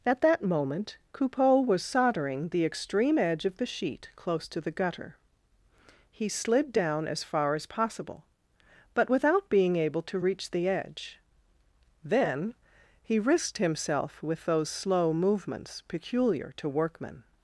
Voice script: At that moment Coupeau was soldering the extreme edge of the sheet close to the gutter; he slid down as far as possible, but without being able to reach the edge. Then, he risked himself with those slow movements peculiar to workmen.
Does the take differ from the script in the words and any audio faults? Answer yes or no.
no